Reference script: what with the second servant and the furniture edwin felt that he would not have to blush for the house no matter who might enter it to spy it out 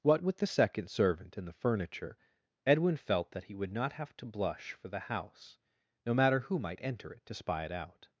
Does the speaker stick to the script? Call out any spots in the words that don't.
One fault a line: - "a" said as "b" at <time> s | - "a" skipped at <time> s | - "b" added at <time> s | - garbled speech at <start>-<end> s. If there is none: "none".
none